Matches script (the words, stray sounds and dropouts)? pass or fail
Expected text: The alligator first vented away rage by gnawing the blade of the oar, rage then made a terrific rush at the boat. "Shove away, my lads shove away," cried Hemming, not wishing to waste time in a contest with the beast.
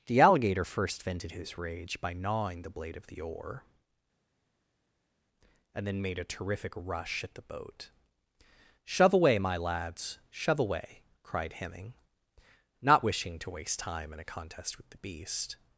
fail